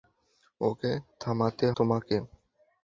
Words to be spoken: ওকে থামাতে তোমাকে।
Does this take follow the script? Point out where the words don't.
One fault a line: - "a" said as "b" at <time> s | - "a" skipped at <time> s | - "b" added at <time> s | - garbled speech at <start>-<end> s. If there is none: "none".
none